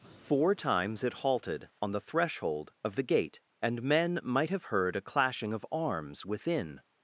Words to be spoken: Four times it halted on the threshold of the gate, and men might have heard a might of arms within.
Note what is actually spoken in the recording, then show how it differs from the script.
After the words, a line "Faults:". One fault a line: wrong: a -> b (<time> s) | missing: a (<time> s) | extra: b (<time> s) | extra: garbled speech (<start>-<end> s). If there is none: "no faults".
Four times it halted on the threshold of the gate, and men might have heard a clashing of arms within.
Faults:
wrong: might -> clashing (5.0 s)